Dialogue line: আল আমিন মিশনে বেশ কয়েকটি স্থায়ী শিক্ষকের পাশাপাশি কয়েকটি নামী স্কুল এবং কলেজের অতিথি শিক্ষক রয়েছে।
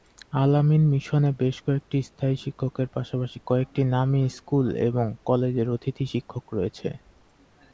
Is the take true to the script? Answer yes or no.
yes